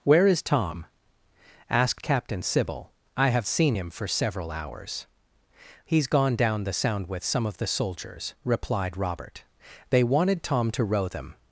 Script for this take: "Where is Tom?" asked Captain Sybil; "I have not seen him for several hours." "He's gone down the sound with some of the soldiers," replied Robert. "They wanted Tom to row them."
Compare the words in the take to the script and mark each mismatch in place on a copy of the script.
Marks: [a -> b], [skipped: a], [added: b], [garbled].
"Where is Tom?" asked Captain Sybil; "I have [skipped: not] seen him for several hours." "He's gone down the sound with some of the soldiers," replied Robert. "They wanted Tom to row them."